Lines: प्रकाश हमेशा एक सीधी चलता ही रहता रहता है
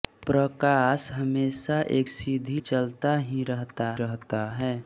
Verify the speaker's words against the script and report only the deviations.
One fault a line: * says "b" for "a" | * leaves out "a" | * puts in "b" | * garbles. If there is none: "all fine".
all fine